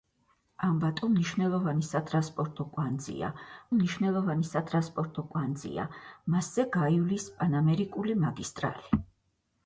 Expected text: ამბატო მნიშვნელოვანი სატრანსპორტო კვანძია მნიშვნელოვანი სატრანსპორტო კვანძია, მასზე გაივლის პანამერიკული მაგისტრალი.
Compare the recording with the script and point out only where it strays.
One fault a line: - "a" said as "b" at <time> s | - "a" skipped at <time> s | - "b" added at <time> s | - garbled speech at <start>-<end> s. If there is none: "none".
none